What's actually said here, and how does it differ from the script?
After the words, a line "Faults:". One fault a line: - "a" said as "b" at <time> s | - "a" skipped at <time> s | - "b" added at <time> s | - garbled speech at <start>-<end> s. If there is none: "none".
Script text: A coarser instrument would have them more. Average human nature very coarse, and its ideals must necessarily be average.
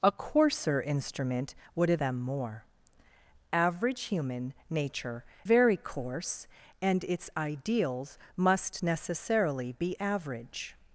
A coarser instrument would have them more. Average human nature very coarse, and its ideals must necessarily be average.
Faults:
none